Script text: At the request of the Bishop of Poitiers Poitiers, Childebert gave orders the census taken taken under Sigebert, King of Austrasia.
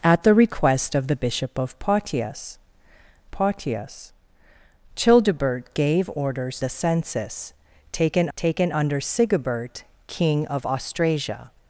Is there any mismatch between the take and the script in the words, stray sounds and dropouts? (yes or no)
no